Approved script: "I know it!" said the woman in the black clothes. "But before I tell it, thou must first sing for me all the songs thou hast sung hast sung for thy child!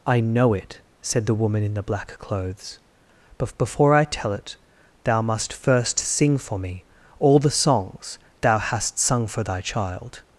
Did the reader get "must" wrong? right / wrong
right